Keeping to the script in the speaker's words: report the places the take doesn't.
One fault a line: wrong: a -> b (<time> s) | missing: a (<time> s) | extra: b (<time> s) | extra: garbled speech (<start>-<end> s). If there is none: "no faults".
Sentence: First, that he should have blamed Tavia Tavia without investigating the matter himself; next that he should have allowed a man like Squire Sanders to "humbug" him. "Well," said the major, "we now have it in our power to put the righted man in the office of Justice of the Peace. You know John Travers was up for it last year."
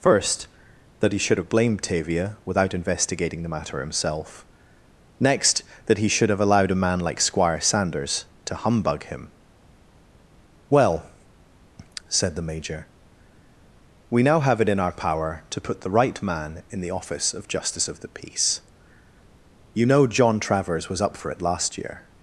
missing: Tavia (2.4 s)
wrong: righted -> right (15.9 s)